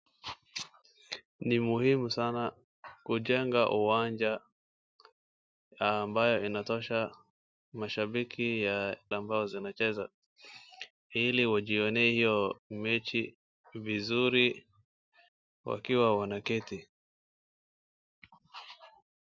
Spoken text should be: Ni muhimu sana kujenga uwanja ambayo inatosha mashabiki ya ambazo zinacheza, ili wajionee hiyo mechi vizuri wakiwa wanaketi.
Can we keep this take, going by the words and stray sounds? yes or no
yes